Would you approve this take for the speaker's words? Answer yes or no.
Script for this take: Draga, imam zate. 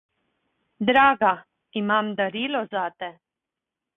no